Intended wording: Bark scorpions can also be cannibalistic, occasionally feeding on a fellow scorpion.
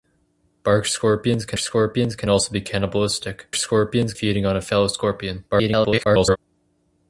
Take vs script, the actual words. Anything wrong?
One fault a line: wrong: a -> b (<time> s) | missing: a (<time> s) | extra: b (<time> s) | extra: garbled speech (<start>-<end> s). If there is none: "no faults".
extra: scorpions can (1.6 s)
wrong: occasionally -> scorpions (3.6 s)
extra: garbled speech (5.5-6.4 s)